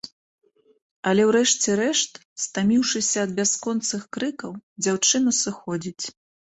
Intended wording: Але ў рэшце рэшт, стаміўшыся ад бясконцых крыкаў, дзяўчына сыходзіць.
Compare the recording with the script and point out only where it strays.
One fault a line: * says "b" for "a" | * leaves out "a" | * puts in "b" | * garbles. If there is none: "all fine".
all fine